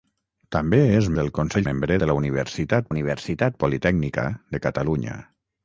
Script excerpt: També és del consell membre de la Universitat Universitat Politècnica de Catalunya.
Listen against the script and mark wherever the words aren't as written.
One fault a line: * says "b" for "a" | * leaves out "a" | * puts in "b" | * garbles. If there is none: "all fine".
all fine